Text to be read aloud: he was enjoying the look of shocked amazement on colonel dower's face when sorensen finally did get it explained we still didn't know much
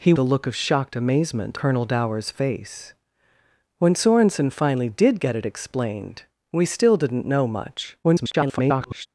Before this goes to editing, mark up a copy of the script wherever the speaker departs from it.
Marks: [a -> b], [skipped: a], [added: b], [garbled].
he [skipped: was enjoying] the look of shocked amazement [skipped: on] colonel dower's face when sorensen finally did get it explained we still didn't know much [garbled]